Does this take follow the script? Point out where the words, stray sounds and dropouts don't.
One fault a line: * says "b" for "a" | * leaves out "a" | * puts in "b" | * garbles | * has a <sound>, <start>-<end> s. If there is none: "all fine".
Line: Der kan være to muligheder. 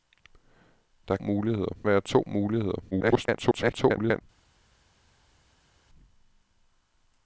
* says "muligheder" for "kan"
* garbles